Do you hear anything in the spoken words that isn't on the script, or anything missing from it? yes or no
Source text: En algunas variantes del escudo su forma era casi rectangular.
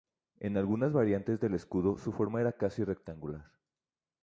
no